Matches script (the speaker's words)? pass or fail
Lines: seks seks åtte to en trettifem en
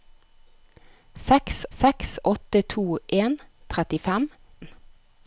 pass